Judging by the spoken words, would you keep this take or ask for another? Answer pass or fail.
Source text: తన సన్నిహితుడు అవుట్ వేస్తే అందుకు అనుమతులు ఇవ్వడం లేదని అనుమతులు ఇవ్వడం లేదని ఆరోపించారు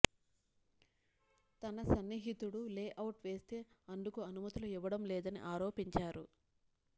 fail